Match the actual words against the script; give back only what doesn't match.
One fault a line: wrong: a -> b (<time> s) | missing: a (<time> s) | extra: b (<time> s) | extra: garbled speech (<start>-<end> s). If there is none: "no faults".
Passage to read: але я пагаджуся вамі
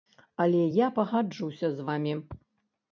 extra: з (1.7 s)